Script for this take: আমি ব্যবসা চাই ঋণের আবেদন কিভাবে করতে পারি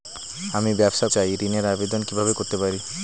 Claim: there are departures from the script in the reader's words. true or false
false